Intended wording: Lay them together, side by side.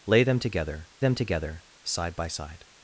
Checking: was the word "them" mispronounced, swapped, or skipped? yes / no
no